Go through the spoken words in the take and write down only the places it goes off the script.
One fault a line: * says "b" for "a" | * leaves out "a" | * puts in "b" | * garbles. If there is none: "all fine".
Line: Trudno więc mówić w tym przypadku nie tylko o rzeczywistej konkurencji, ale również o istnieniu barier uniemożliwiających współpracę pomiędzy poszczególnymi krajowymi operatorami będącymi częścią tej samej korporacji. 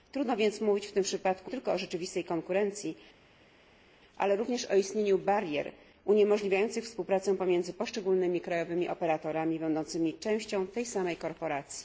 * leaves out "nie"